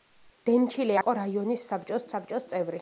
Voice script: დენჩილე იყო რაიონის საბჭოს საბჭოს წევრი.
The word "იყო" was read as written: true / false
true